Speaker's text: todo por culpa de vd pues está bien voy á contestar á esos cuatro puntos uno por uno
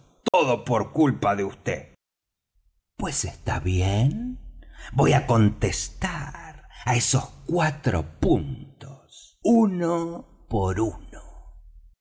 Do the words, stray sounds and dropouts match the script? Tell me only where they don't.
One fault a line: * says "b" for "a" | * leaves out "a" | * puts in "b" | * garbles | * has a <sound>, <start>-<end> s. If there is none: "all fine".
* has a dropout, 0.3-0.3 s